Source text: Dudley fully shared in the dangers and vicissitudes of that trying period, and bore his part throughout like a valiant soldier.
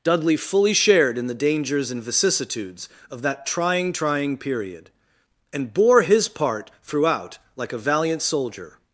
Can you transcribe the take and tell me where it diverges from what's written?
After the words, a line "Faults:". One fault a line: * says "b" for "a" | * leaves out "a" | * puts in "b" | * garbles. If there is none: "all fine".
Dudley fully shared in the dangers and vicissitudes of that trying trying period, and bore his part throughout like a valiant soldier.
Faults:
* puts in "trying"